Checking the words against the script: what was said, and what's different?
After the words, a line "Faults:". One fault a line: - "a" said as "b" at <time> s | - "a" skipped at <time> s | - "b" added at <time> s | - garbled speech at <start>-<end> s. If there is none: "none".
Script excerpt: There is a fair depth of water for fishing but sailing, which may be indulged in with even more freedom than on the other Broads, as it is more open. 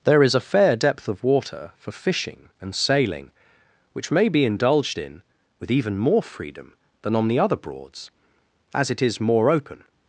There is a fair depth of water for fishing and sailing, which may be indulged in with even more freedom than on the other Broads, as it is more open.
Faults:
- "but" said as "and" at 2.6 s